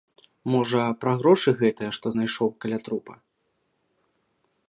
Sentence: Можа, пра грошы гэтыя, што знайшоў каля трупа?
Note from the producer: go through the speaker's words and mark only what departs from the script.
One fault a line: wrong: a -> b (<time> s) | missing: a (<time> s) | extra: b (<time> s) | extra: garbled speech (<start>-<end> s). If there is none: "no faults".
no faults